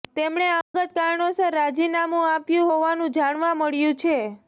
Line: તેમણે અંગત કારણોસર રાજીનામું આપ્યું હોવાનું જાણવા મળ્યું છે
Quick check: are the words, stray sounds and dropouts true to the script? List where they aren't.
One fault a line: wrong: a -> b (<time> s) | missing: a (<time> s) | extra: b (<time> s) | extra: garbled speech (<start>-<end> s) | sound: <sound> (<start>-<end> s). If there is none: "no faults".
sound: dropout (0.6-0.7 s)